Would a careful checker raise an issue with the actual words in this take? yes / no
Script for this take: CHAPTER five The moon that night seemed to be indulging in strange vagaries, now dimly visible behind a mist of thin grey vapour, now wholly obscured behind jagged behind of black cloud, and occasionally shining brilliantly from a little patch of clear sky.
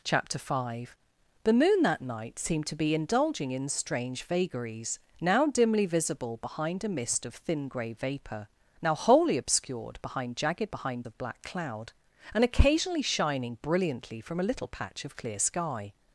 no